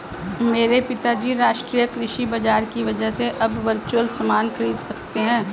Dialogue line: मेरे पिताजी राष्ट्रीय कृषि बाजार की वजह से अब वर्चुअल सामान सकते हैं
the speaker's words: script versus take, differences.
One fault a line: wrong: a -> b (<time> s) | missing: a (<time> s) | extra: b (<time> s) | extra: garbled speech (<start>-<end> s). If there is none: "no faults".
extra: खरीद (4.5 s)